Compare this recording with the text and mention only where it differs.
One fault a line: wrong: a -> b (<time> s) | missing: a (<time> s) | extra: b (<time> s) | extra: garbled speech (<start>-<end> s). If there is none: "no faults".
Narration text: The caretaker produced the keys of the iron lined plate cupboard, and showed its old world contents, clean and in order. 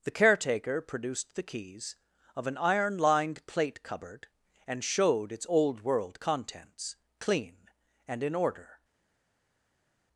wrong: the -> an (2.5 s)